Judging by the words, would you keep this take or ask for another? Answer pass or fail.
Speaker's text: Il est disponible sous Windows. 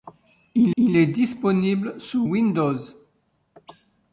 fail